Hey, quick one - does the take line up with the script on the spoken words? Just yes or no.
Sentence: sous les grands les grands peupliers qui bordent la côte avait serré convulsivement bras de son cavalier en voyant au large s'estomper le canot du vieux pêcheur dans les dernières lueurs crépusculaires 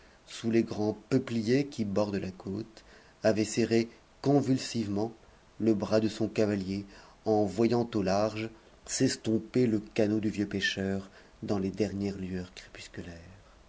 no